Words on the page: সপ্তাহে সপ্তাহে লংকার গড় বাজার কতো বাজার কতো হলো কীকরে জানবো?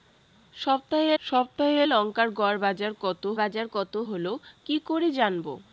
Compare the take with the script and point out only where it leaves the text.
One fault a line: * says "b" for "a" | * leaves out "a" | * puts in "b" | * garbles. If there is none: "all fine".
all fine